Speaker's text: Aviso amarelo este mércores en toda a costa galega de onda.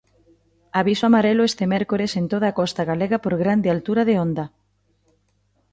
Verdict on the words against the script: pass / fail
fail